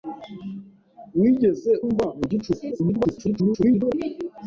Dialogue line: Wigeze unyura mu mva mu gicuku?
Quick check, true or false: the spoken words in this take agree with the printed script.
false